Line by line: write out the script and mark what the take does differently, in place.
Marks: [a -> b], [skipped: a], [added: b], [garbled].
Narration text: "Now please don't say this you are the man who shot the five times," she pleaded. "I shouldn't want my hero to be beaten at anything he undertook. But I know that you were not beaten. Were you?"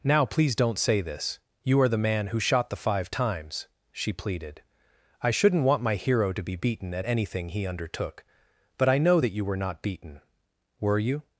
"Now please don't say this you are the man who shot the five times," she pleaded. "I shouldn't want my hero to be beaten at anything he undertook. But I know that you were not beaten. Were you?"